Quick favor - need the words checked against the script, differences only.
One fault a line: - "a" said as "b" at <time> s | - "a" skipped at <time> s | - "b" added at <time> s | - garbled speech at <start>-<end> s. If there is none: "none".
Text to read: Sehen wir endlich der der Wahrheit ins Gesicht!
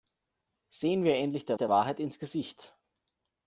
none